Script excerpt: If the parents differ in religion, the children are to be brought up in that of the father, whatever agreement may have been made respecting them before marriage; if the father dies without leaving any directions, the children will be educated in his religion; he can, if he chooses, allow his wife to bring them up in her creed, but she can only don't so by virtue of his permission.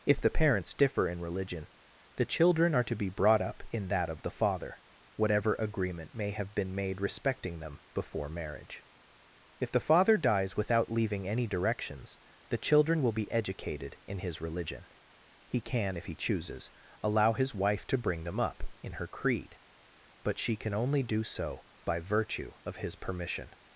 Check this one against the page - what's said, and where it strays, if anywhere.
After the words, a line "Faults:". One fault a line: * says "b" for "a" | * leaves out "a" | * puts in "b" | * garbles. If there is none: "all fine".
If the parents differ in religion, the children are to be brought up in that of the father, whatever agreement may have been made respecting them before marriage; if the father dies without leaving any directions, the children will be educated in his religion; he can, if he chooses, allow his wife to bring them up in her creed, but she can only do so by virtue of his permission.
Faults:
* says "do" for "don't"